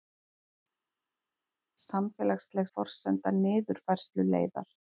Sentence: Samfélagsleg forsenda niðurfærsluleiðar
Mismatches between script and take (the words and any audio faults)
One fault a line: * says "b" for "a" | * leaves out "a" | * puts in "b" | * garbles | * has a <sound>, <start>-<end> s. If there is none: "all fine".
all fine